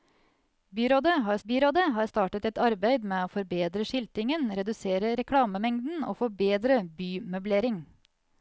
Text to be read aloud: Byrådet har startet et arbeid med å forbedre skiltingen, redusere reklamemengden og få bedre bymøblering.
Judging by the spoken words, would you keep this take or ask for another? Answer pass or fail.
fail